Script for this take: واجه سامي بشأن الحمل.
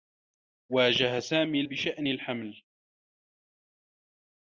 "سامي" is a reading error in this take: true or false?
false